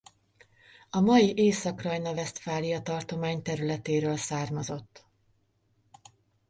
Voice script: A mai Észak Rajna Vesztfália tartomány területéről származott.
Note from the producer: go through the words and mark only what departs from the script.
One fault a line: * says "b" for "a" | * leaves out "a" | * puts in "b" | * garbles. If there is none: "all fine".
all fine